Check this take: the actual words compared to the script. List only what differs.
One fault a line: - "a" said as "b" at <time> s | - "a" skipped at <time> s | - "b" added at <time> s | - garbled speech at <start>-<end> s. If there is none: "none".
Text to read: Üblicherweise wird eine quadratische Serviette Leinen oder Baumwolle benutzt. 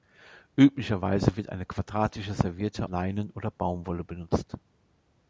none